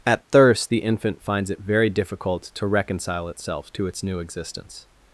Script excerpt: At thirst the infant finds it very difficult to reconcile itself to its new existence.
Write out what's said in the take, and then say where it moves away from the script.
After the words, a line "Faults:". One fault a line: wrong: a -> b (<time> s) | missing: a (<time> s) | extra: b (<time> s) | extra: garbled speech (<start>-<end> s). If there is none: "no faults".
At thirst the infant finds it very difficult to reconcile itself to its new existence.
Faults:
no faults